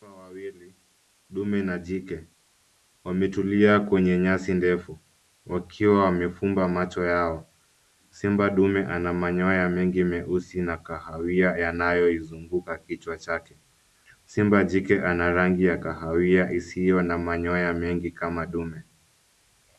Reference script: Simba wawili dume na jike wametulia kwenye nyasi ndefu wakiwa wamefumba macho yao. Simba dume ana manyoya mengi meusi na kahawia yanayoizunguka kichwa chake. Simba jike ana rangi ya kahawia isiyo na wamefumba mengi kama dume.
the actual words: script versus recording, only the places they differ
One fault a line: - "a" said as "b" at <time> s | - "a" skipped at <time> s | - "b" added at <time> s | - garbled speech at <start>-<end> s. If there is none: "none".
- "wamefumba" said as "manyoya" at 17.2 s